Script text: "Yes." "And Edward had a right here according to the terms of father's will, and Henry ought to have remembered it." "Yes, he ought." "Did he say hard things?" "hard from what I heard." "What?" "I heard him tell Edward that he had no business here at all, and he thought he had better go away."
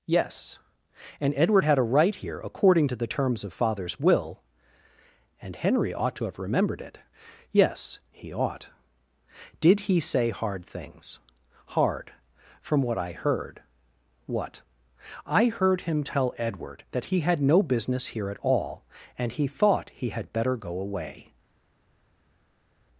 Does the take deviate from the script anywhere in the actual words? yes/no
no